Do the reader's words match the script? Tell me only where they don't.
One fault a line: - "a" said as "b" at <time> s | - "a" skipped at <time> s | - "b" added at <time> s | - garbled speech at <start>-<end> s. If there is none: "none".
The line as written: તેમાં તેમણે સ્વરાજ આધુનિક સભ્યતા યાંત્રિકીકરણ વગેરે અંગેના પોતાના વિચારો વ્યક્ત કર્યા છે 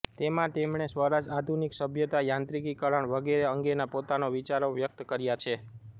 none